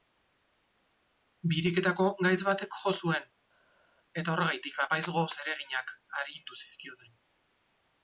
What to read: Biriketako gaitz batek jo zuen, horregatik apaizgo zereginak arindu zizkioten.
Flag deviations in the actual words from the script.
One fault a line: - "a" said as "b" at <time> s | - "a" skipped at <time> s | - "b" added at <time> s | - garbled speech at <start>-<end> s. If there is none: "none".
- "eta" added at 4.2 s